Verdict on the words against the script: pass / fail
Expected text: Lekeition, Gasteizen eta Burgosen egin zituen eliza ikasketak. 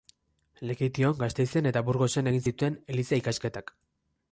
pass